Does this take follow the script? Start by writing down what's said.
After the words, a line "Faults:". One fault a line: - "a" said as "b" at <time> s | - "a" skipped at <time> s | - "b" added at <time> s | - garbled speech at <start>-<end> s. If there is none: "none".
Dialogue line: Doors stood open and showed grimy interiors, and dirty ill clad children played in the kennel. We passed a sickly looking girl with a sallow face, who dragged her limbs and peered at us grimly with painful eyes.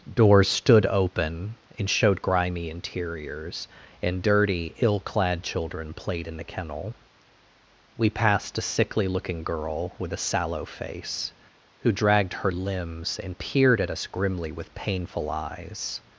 Doors stood open and showed grimy interiors, and dirty ill clad children played in the kennel. We passed a sickly looking girl with a sallow face, who dragged her limbs and peered at us grimly with painful eyes.
Faults:
none